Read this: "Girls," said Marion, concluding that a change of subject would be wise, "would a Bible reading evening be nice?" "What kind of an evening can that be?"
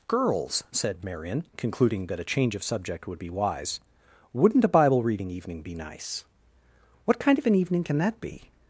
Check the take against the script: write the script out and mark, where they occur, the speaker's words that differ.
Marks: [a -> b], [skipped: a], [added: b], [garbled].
"Girls," said Marion, concluding that a change of subject would be wise, ["would -> wouldn't] a Bible reading evening be nice?" "What kind of an evening can that be?"